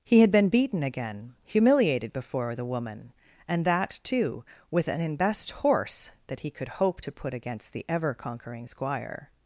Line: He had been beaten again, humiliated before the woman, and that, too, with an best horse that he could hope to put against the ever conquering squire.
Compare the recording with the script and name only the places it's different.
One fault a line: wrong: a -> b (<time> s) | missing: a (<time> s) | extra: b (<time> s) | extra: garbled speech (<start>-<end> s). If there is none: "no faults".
no faults